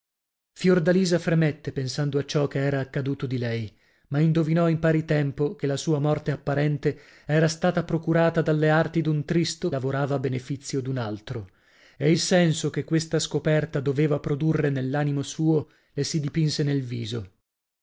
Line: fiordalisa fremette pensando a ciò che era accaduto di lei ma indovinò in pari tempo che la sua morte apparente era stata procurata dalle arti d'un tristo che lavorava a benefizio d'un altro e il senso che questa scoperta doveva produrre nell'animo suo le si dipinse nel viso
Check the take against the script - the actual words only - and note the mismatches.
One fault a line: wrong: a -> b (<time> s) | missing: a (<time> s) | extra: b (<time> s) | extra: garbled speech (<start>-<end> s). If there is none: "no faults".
missing: che (9.7 s)